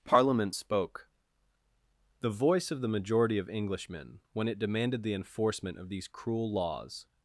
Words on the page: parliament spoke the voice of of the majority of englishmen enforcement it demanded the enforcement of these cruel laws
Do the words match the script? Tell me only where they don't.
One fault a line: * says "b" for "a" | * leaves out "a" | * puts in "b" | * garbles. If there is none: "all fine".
* leaves out "of"
* says "when" for "enforcement"